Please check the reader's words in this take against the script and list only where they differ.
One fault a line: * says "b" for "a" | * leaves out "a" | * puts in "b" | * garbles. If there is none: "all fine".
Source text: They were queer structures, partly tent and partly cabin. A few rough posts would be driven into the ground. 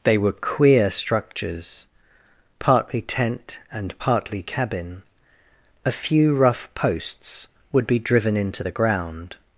all fine